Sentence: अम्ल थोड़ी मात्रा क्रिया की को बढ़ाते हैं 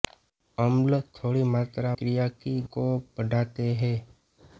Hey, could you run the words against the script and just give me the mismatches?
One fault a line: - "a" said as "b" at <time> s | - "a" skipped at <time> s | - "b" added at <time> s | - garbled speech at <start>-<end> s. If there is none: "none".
none